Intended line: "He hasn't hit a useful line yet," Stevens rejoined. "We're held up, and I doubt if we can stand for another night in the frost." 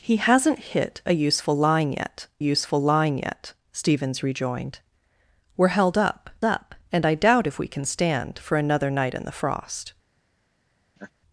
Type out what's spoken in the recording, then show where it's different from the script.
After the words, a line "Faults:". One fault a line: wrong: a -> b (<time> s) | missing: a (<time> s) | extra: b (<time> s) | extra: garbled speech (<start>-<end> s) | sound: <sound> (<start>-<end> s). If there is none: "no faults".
"He hasn't hit a useful line yet useful line yet," Stevens rejoined. "We're held up up, and I doubt if we can stand for another night in the frost."
Faults:
extra: useful line yet (2.4 s)
extra: up (6.4 s)
sound: laugh (11.0-11.1 s)